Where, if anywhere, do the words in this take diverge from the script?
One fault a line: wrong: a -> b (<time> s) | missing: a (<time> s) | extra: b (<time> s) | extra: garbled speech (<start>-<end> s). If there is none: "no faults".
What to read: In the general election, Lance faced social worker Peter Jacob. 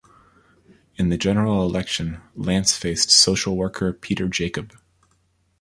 no faults